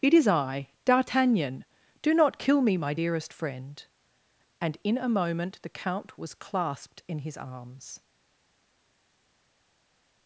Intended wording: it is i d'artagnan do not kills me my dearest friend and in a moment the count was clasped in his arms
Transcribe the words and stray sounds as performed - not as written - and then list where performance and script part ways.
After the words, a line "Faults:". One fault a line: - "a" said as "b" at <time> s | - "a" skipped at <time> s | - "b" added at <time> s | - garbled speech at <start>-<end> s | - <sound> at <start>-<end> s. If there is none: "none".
it is i d'artagnan do not kill me my dearest friend and in a moment the count was clasped in his arms
Faults:
- "kills" said as "kill" at 2.4 s